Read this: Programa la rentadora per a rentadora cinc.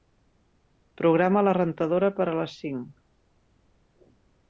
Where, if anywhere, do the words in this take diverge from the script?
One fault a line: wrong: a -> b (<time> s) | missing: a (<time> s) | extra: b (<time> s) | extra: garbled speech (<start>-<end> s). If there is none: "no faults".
wrong: rentadora -> les (2.4 s)